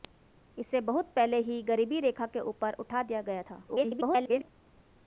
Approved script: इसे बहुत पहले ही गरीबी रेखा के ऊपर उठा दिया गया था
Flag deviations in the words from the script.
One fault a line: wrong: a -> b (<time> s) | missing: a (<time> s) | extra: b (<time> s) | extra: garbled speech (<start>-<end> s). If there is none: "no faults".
extra: garbled speech (3.7-4.5 s)